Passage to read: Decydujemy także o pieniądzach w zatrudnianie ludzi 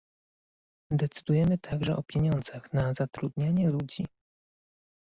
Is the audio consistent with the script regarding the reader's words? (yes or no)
no